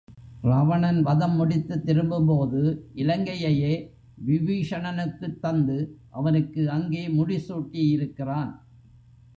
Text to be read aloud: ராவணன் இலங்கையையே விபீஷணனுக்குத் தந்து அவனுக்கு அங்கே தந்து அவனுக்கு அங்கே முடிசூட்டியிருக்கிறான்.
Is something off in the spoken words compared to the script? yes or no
yes